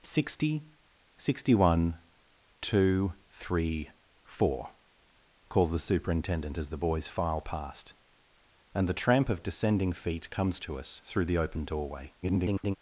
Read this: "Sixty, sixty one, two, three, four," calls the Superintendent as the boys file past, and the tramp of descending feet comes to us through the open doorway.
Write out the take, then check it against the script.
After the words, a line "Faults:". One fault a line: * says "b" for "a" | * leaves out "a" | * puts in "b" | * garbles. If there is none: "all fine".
"Sixty, sixty one, two, three, four," calls the Superintendent as the boys file past, and the tramp of descending feet comes to us through the open doorway. [garbled]
Faults:
* garbles